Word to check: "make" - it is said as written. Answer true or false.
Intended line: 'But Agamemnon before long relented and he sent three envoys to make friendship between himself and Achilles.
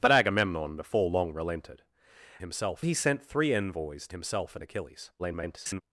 false